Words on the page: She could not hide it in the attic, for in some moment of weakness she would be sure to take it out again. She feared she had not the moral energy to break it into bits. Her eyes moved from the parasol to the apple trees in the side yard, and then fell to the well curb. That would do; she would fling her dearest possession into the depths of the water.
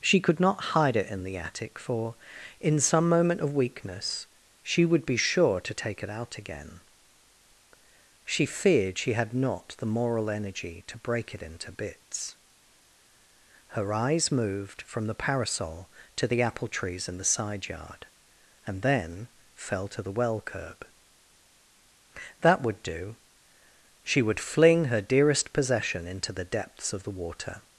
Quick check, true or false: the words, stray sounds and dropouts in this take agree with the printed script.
true